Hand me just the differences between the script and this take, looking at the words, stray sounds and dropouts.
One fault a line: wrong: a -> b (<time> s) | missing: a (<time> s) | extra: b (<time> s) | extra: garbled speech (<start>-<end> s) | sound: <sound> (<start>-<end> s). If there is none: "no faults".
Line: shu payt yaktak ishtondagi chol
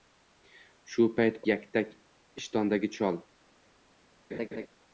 sound: laugh (4.3-4.7 s)